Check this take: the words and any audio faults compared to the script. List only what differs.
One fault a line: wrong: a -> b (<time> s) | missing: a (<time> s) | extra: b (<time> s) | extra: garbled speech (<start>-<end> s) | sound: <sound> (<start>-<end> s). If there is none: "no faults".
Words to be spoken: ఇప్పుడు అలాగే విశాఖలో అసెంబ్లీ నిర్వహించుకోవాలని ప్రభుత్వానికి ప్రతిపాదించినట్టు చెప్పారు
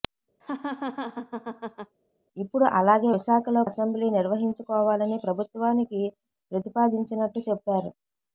sound: laugh (0.4-1.9 s)